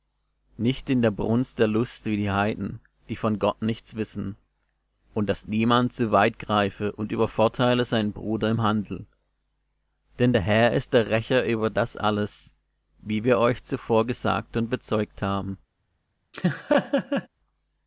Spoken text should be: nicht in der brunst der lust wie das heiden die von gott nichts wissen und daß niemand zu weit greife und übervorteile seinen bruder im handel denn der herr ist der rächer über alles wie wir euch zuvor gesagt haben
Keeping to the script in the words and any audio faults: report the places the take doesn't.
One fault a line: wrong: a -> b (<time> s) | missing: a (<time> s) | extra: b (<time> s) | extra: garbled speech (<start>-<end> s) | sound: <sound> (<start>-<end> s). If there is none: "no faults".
wrong: das -> die (2.2 s)
extra: das (11.7 s)
extra: und bezeugt (14.5 s)
sound: laugh (16.3-17.3 s)